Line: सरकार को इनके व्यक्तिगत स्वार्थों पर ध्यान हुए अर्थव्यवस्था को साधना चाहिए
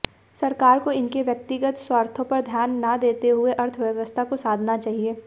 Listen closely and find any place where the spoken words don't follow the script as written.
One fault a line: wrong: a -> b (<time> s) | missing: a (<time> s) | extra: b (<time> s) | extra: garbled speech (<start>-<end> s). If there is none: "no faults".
extra: न देते (2.9 s)